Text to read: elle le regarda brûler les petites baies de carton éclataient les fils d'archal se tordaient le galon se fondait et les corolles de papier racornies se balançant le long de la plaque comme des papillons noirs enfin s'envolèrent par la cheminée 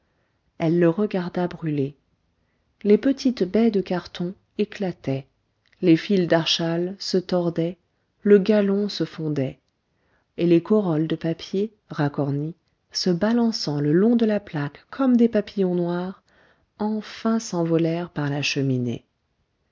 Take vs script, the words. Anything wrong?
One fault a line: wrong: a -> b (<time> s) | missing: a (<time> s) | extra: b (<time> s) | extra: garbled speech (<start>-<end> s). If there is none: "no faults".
no faults